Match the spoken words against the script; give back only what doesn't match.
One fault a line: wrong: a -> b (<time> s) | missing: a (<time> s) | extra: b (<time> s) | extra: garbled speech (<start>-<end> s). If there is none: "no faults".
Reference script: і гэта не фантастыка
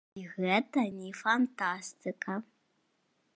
no faults